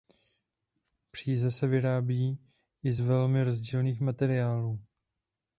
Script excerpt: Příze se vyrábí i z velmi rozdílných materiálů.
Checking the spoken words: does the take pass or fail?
pass